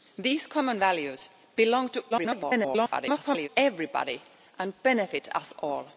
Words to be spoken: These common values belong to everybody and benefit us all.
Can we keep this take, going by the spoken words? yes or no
no